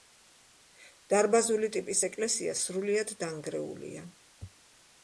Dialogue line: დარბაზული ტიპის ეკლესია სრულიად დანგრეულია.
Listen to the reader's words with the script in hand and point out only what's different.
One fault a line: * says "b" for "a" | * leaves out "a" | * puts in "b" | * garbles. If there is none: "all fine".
all fine